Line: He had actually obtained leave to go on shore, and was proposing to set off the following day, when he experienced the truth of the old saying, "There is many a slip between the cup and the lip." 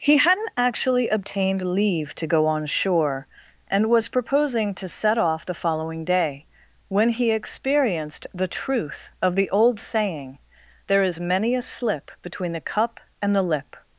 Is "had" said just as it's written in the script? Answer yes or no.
no